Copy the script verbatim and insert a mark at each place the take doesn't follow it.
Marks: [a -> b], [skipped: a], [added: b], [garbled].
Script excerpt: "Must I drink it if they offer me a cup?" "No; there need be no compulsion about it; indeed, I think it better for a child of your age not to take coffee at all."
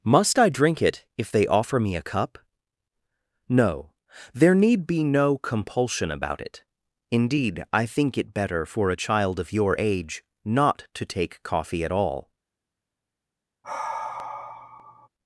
"Must I drink it if they offer me a cup?" "No; there need be no compulsion about it; indeed, I think it better for a child of your age not to take coffee at all."